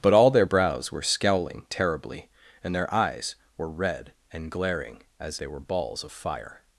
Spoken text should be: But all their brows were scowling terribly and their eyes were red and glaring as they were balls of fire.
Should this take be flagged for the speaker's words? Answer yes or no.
no